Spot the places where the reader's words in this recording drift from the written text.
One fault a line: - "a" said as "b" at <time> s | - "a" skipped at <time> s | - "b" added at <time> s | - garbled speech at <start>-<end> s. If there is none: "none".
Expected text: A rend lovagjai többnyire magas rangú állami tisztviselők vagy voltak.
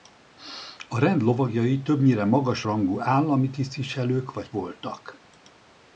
none